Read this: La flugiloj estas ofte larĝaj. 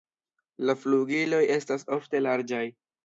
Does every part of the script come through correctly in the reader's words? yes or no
yes